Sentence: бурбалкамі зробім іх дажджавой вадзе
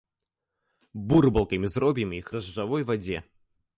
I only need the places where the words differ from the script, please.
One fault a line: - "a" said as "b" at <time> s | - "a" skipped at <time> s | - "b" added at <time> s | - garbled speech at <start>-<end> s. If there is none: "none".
none